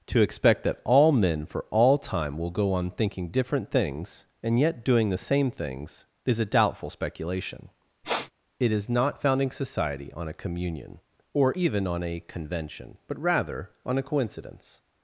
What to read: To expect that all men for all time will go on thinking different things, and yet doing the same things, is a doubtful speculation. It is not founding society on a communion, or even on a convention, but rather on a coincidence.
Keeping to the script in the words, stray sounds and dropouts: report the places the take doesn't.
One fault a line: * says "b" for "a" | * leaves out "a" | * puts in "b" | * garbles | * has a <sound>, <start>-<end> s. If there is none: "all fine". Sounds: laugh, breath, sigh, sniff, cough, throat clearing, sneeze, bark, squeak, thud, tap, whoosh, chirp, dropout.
* has a sniff, 8.0-8.3 s